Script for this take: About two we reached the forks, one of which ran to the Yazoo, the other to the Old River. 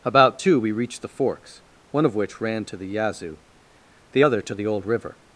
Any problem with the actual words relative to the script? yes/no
no